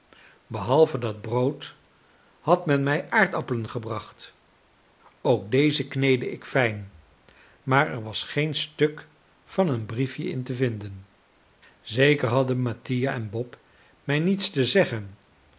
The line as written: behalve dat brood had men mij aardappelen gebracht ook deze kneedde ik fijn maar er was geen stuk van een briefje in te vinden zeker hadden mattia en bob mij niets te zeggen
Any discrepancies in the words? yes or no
no